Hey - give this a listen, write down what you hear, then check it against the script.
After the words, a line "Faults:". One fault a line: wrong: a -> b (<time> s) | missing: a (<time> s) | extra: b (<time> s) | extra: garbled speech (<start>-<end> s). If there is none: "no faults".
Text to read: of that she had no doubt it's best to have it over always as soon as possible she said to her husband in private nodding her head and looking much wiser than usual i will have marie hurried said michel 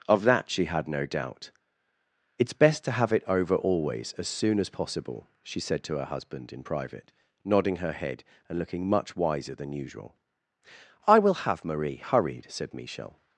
of that she had no doubt it's best to have it over always as soon as possible she said to her husband in private nodding her head and looking much wiser than usual i will have marie hurried said michel
Faults:
no faults